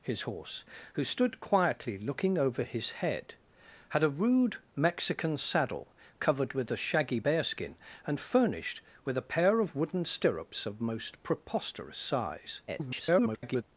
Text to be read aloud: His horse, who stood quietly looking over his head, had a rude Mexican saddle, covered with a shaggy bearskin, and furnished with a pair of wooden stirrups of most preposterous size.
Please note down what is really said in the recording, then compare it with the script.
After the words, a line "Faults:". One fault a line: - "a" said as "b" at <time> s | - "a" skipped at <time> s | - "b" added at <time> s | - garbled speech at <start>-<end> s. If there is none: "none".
His horse, who stood quietly looking over his head, had a rude Mexican saddle, covered with a shaggy bearskin, and furnished with a pair of wooden stirrups of most preposterous size. [garbled]
Faults:
- garbled speech at 12.7-13.6 s